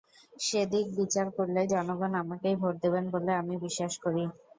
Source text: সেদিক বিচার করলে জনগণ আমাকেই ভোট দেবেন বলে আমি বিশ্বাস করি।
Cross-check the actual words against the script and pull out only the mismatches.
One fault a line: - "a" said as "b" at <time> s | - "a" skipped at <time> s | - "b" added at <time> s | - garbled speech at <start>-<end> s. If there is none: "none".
none